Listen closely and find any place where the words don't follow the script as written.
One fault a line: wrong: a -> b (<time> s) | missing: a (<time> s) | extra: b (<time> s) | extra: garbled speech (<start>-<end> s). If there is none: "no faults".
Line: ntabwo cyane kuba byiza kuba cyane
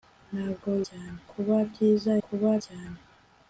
no faults